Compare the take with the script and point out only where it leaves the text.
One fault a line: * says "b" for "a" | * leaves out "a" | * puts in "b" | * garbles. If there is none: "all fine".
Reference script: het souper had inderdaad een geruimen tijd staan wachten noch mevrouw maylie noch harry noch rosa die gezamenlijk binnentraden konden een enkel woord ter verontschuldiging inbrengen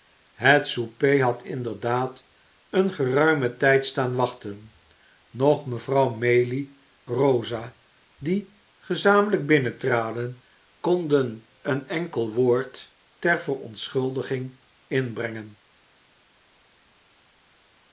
* leaves out "noch harry noch"